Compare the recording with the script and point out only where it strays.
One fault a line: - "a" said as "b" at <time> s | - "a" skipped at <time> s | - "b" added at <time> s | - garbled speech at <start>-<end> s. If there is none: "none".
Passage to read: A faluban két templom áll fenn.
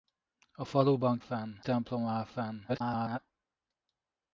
- "két" said as "fenn" at 1.2 s
- garbled speech at 2.7-3.2 s